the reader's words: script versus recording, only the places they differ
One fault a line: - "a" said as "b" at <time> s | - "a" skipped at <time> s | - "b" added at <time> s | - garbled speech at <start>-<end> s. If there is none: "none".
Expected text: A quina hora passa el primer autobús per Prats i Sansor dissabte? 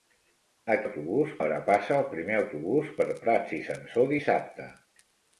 - "quina" said as "autobús" at 0.8 s